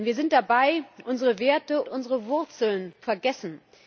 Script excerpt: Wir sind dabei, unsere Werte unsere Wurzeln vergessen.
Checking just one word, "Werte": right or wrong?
right